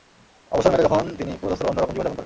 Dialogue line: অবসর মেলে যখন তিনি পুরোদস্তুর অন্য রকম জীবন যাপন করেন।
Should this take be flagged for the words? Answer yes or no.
no